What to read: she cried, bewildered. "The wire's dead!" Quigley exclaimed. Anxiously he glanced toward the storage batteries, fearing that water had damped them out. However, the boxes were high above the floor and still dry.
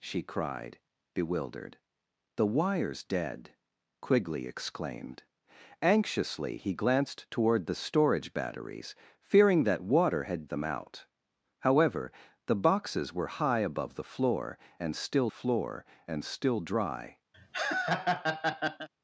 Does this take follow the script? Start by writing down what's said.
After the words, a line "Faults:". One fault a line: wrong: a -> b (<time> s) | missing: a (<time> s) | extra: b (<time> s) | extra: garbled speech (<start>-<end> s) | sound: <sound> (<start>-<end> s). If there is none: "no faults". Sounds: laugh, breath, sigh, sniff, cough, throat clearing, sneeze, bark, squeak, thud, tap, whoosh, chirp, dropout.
she cried, bewildered. "The wire's dead!" Quigley exclaimed. Anxiously he glanced toward the storage batteries, fearing that water had them out. However, the boxes were high above the floor and still floor and still dry.
Faults:
missing: damped (10.5 s)
extra: floor and still (15.3 s)
sound: laugh (17.3-18.9 s)